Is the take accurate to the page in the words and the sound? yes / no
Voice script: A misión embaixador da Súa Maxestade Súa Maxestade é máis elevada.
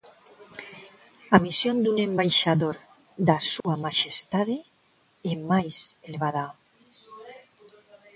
no